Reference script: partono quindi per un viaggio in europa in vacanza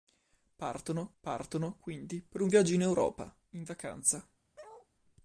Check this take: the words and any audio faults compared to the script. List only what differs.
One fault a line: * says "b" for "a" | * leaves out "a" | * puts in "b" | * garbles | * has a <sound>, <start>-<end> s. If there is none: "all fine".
* puts in "partono"
* has a bark, 4.6-4.9 s